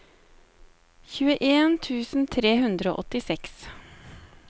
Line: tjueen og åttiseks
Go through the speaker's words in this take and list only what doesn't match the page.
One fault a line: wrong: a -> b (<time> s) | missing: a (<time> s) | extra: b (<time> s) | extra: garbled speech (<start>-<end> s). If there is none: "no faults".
extra: tusen tre hundre (1.9 s)